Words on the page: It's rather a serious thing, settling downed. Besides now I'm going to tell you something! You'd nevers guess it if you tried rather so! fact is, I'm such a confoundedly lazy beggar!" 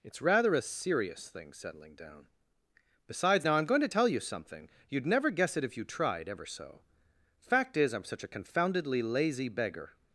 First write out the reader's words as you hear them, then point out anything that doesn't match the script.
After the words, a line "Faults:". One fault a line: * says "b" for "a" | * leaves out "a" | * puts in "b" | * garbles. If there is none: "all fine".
It's rather a serious thing, settling down. Besides now I'm going to tell you something! You'd never guess it if you tried ever so! fact is, I'm such a confoundedly lazy beggar!"
Faults:
* says "down" for "downed"
* says "never" for "nevers"
* says "ever" for "rather"